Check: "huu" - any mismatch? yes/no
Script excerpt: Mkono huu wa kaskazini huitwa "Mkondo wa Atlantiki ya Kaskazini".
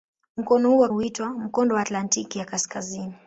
no